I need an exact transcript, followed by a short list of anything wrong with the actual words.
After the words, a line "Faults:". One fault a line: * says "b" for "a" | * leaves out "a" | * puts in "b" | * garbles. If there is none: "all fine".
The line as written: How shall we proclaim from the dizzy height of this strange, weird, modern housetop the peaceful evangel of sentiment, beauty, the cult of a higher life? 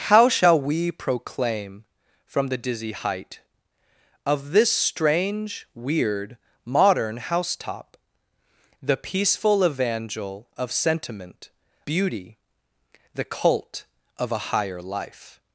How shall we proclaim from the dizzy height of this strange, weird, modern housetop the peaceful evangel of sentiment, beauty, the cult of a higher life?
Faults:
all fine